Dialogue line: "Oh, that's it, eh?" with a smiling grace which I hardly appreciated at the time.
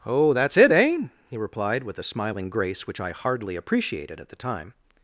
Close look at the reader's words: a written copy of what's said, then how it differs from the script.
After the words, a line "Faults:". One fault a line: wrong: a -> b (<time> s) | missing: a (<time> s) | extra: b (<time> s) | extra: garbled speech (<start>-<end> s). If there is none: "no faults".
"Oh, that's it, eh?" he replied, with a smiling grace which I hardly appreciated at the time.
Faults:
extra: he replied (1.3 s)